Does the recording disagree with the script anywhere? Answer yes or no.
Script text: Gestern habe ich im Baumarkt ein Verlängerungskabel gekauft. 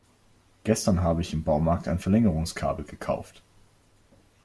no